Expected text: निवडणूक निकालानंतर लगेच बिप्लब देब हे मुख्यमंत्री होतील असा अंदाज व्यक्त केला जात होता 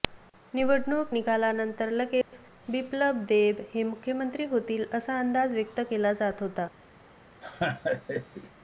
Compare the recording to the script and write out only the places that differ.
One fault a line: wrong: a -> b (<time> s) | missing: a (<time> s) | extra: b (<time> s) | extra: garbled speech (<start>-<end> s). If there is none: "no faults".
no faults